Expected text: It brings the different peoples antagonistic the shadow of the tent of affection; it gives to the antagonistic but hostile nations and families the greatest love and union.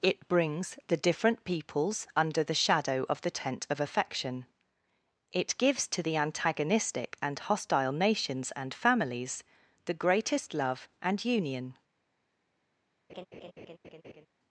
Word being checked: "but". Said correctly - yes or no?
no